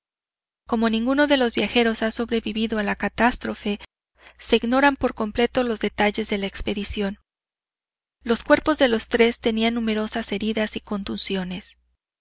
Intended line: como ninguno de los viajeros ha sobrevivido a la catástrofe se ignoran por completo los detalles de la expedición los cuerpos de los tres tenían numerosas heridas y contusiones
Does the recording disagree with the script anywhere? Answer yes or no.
no